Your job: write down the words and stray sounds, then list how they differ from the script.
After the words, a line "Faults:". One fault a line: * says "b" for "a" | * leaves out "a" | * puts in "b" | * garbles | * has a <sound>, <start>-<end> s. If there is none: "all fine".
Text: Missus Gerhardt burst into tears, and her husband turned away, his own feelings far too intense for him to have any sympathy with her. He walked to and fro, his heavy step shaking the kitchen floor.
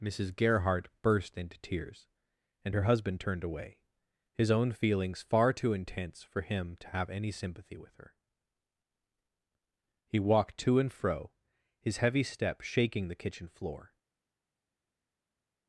Missus Gerhardt burst into tears, and her husband turned away, his own feelings far too intense for him to have any sympathy with her. He walked to and fro, his heavy step shaking the kitchen floor.
Faults:
all fine